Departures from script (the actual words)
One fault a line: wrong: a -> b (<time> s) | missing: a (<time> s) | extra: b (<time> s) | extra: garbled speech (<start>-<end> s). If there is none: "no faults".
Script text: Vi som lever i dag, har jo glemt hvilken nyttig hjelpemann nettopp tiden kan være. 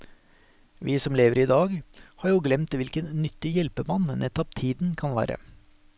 no faults